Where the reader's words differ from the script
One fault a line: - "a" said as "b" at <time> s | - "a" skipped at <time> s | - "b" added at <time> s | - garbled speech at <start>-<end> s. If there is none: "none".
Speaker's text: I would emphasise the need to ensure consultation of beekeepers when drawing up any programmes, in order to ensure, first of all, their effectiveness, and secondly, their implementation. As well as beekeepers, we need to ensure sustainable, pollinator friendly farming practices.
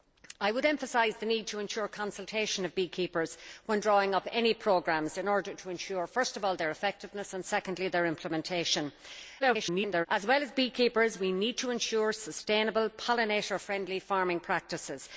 - garbled speech at 9.4-10.1 s